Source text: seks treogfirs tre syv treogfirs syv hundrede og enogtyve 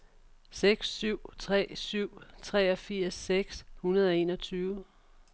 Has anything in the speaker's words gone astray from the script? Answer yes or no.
yes